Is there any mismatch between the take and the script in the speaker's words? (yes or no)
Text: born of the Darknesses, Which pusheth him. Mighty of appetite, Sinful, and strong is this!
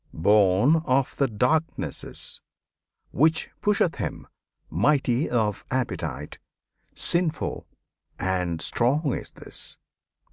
no